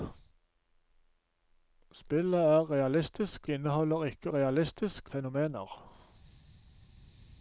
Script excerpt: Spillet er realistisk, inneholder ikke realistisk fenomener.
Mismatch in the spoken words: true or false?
false